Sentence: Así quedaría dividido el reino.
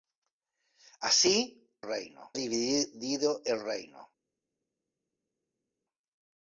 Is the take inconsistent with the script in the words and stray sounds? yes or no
yes